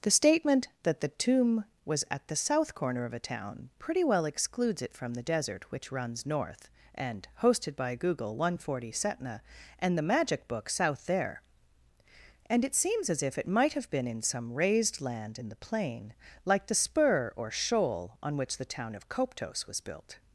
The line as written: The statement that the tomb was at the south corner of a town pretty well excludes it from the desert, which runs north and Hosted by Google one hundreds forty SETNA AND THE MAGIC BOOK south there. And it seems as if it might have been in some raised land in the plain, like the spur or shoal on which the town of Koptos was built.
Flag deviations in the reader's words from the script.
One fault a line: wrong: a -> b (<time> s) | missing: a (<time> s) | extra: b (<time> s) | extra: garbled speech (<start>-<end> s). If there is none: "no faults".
wrong: hundreds -> hundred (8.5 s)